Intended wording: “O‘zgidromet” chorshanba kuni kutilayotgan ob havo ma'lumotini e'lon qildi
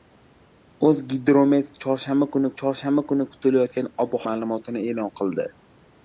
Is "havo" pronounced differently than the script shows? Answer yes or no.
yes